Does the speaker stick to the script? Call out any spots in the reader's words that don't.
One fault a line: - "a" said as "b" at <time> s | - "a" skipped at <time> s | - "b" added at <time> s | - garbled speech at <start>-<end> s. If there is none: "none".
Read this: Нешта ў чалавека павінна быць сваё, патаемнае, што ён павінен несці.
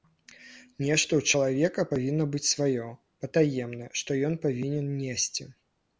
none